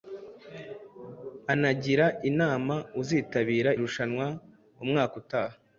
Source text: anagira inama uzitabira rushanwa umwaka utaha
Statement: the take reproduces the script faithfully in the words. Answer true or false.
true